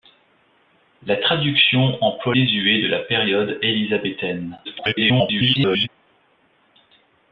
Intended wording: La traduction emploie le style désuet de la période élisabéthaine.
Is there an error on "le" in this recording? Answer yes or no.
yes